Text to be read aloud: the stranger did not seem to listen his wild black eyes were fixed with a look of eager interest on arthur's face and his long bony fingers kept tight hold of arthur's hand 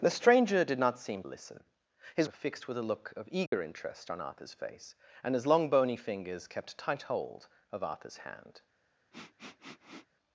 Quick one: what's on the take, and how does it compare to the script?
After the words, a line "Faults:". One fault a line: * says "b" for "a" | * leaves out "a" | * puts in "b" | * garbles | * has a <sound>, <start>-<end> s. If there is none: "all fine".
the stranger did not seem listen his were fixed with a look of eager interest on arthur's face and his long bony fingers kept tight hold of arthur's hand
Faults:
* leaves out "to"
* leaves out "wild black eyes"
* has a dropout, 3.5-3.5 s
* has a sniff, 9.1-10.1 s